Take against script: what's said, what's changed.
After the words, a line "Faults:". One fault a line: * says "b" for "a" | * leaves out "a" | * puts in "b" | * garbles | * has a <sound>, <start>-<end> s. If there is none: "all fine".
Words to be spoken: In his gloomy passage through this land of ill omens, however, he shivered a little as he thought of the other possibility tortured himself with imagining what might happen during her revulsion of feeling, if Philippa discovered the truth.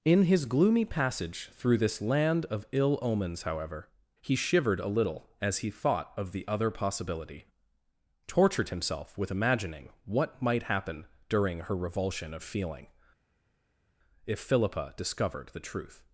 In his gloomy passage through this land of ill omens, however, he shivered a little as he thought of the other possibility tortured himself with imagining what might happen during her revulsion of feeling, if Philippa discovered the truth.
Faults:
all fine